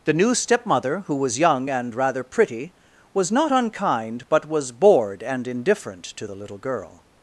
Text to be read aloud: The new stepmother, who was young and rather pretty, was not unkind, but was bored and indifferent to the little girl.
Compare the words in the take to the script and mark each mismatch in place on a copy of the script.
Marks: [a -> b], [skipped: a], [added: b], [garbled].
The new stepmother, who was young and rather pretty, was not unkind, but was bored and indifferent to the little girl.